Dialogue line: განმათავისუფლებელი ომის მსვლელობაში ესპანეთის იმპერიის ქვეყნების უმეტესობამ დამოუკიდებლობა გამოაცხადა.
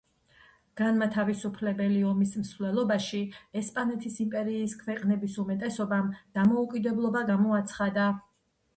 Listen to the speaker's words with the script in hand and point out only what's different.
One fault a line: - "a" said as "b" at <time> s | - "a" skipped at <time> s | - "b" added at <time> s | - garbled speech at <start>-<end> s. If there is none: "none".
none